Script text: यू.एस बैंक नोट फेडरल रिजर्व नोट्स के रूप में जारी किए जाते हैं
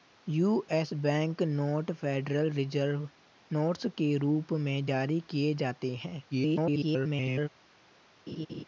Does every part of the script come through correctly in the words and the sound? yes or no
no